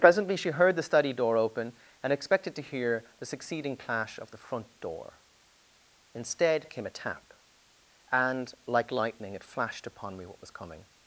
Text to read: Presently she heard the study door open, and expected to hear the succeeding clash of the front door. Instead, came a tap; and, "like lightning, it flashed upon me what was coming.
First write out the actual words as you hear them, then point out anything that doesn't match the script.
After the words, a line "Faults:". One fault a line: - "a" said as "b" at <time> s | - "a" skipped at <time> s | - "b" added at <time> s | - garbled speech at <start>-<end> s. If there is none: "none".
Presently she heard the study door open, and expected to hear the succeeding clash of the front door. Instead, came a tap; and, "like lightning, it flashed upon me what was coming.
Faults:
none